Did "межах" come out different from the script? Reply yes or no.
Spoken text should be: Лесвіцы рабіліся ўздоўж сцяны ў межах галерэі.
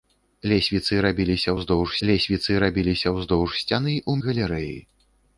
yes